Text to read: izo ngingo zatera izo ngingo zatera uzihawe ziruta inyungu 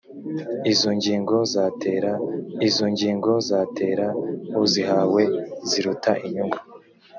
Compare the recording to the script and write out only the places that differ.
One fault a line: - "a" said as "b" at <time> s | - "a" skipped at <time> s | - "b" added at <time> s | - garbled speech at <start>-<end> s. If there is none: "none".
none